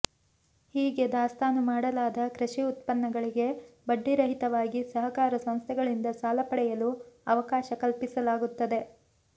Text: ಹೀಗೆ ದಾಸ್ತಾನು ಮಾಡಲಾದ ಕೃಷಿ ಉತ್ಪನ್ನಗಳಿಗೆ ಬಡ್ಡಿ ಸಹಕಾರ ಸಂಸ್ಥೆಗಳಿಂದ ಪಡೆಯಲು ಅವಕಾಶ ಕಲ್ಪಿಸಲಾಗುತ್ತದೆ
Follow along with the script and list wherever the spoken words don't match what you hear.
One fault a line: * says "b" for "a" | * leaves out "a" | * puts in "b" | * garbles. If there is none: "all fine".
* puts in "ರಹಿತವಾಗಿ"
* puts in "ಸಾಲ"